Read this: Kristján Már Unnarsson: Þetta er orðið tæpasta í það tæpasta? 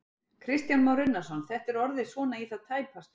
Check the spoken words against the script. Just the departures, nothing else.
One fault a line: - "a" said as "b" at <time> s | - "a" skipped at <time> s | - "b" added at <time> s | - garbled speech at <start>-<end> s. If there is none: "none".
- "tæpasta" said as "svona" at 2.1 s